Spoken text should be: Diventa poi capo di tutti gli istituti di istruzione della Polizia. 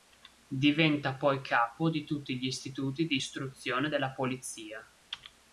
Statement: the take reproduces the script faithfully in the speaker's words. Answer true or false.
true